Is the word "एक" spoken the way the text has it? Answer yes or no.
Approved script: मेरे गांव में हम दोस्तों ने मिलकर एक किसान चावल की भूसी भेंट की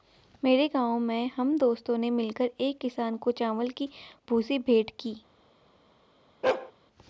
yes